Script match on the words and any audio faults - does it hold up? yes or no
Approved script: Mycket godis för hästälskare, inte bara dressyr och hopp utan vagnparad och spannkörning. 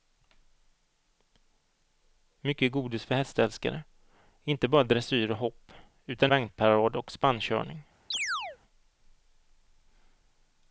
no